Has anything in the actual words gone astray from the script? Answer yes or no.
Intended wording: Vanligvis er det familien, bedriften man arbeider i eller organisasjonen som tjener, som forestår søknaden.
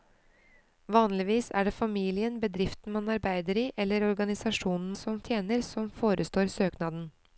no